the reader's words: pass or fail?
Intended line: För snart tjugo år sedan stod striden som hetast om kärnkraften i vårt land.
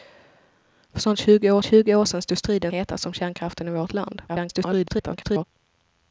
fail